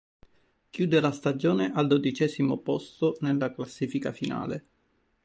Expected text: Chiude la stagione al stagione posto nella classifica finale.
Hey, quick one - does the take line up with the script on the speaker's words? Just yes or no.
no